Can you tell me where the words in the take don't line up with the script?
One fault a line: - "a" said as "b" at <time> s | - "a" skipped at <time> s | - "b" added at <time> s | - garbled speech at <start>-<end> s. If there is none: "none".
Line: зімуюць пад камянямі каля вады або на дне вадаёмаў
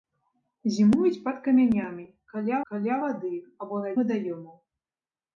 - "каля" added at 2.7 s
- "дне" skipped at 3.9 s